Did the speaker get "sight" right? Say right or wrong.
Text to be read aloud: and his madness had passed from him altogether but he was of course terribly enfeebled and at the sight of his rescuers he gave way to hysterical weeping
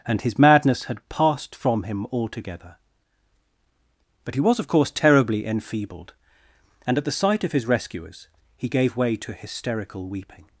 right